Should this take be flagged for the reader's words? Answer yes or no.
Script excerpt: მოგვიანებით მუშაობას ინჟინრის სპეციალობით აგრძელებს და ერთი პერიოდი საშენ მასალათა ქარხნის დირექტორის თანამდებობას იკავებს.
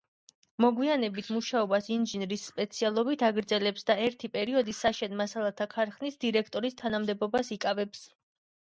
no